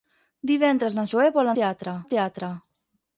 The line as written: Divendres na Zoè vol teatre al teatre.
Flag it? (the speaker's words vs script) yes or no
no